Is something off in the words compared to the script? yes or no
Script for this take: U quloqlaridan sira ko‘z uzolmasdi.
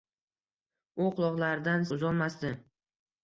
yes